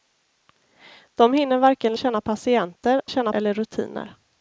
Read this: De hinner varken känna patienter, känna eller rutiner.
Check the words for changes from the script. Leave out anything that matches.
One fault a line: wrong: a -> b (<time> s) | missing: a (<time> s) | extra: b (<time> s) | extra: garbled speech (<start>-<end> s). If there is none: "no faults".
no faults